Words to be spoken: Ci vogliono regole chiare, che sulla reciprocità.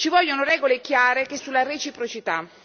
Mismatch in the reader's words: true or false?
false